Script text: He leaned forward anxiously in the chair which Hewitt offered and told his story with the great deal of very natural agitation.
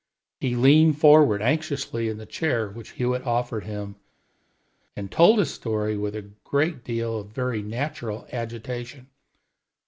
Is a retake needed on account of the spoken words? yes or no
yes